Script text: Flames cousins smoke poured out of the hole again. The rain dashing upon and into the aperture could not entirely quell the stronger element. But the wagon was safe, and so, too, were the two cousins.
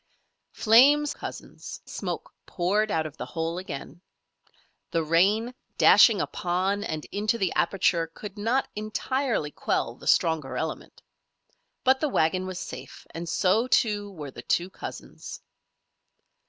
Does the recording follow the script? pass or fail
pass